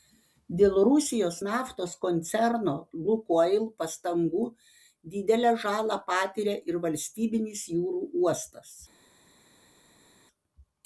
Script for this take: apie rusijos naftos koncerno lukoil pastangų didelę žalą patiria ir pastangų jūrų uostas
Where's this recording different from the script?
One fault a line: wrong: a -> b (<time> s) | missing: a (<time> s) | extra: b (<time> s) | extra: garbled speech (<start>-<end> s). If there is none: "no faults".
wrong: apie -> dėl (0.6 s)
wrong: pastangų -> valstybinis (6.9 s)